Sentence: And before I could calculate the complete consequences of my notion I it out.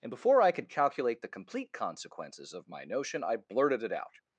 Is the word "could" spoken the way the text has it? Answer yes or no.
yes